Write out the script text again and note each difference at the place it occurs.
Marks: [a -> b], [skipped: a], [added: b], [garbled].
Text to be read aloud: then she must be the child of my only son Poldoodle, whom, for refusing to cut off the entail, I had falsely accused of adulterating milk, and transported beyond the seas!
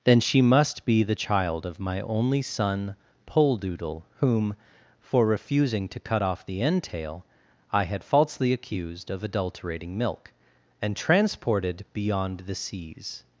then she must be the child of my only son Poldoodle, whom, for refusing to cut off the entail, I had falsely accused of adulterating milk, and transported beyond the seas!